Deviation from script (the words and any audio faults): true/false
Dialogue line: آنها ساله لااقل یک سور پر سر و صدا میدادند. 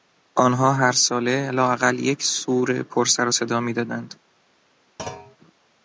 true